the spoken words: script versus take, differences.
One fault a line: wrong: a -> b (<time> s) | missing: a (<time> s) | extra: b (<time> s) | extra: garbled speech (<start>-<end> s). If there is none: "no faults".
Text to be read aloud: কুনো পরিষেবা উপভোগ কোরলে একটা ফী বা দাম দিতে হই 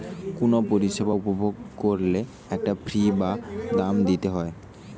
no faults